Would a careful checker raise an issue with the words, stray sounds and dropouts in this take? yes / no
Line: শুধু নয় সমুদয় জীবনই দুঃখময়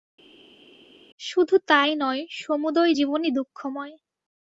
yes